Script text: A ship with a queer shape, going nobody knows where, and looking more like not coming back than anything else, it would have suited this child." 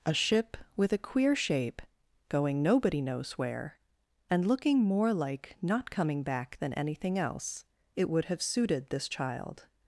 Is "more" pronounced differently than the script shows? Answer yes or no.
no